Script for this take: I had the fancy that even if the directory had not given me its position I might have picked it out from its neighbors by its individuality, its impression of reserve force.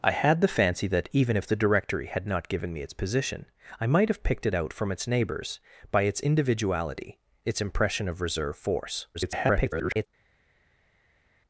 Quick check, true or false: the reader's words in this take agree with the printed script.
false